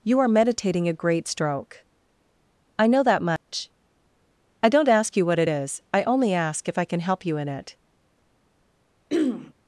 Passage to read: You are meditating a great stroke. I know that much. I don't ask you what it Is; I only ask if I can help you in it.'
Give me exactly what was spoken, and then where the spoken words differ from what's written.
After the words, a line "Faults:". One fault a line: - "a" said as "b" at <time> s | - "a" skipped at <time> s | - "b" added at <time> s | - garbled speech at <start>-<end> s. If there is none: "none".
You are meditating a great stroke. I know that much. I don't ask you what it Is; I only ask if I can help you in it.'
Faults:
none